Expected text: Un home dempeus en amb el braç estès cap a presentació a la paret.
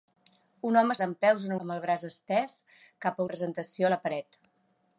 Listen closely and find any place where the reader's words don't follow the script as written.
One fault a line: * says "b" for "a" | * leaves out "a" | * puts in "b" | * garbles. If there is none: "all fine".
all fine